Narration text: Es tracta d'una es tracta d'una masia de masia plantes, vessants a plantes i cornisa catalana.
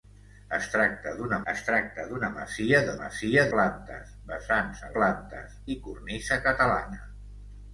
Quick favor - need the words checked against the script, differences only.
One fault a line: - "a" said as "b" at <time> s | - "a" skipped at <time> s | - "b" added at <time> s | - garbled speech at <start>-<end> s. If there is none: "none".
none